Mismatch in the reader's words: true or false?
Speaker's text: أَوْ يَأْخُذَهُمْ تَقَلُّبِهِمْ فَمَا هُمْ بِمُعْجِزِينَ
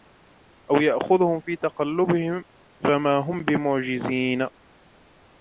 true